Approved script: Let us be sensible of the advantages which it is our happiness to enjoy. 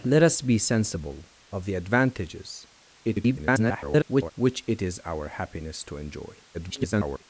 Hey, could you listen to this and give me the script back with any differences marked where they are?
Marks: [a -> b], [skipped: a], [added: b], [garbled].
Let us be sensible of the advantages [garbled] which it is our happiness to enjoy. [garbled]